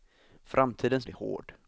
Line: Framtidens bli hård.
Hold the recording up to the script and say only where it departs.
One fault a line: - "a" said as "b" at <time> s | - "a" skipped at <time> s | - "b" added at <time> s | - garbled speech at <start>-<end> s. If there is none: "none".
none